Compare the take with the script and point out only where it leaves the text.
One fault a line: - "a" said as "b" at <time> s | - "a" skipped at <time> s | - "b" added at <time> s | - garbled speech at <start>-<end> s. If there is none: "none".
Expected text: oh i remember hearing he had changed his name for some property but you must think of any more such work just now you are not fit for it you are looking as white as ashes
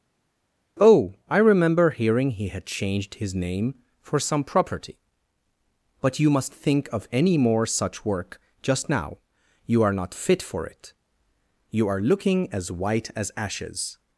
none